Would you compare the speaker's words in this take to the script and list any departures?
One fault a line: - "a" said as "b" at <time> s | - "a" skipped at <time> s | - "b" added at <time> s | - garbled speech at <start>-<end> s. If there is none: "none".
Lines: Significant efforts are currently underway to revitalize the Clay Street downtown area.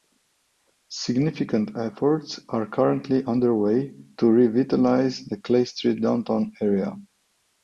none